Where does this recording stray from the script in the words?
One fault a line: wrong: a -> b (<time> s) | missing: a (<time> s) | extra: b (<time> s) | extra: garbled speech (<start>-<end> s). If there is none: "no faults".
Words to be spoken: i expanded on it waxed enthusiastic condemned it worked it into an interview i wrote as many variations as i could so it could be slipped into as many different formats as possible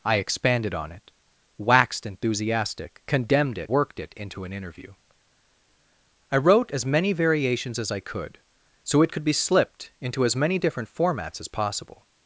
no faults